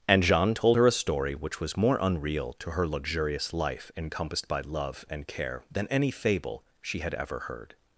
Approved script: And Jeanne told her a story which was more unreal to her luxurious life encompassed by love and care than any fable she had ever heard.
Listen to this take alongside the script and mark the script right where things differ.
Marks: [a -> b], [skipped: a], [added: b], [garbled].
And Jeanne told her a story which was more unreal to her luxurious life encompassed by love and care than any fable she had ever heard.